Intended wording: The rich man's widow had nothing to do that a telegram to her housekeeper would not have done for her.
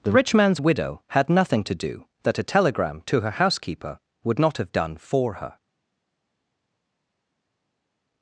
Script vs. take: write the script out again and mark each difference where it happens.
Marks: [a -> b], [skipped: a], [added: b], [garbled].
The rich man's widow had nothing to do that a telegram to her housekeeper would not have done for her.